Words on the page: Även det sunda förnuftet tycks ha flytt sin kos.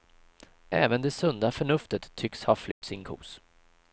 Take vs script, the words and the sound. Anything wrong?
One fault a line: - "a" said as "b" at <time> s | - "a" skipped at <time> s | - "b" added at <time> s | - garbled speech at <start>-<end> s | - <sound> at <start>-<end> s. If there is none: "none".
- dropout at 2.7-2.8 s